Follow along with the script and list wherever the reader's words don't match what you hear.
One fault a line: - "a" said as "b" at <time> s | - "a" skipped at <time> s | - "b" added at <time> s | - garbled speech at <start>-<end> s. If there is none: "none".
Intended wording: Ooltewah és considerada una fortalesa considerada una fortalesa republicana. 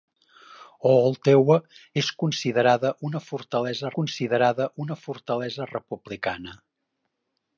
none